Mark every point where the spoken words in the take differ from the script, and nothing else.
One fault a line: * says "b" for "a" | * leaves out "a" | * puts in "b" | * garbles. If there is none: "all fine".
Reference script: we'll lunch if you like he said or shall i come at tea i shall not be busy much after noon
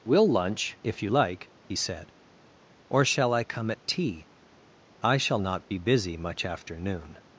all fine